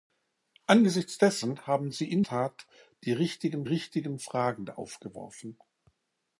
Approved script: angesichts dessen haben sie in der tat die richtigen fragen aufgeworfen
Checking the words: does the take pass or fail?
fail